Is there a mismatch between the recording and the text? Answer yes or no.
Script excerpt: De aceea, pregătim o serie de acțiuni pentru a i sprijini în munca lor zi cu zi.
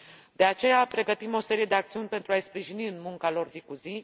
no